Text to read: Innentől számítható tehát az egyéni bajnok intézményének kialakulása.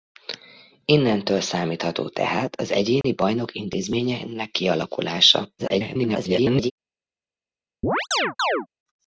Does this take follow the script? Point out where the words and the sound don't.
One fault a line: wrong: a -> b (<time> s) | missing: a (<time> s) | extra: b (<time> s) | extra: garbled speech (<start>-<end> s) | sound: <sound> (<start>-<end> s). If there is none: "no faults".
sound: dropout (3.0-3.0 s)
extra: garbled speech (5.6-6.7 s)
sound: chirp (7.8-8.7 s)